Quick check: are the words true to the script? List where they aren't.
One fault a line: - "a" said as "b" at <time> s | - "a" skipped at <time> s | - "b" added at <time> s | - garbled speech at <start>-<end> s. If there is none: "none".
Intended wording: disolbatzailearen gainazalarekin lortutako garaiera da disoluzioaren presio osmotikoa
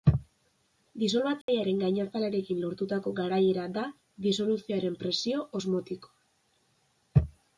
none